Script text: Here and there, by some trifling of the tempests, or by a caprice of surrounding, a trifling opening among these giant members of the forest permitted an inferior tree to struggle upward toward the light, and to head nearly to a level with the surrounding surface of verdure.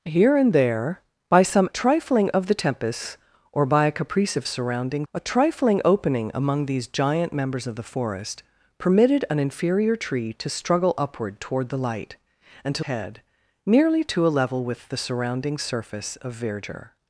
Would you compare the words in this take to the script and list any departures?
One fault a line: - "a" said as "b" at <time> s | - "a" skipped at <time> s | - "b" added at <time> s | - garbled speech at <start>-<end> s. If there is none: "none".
none